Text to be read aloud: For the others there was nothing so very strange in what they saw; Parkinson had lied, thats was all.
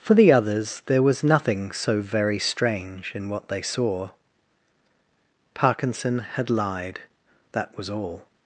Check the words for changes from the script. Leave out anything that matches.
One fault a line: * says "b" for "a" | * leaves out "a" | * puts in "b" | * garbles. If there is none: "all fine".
* says "that" for "thats"